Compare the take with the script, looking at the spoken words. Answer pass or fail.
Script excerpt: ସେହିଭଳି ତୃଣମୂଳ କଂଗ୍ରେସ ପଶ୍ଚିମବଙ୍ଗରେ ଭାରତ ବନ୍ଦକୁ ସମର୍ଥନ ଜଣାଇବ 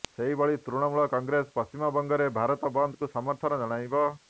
pass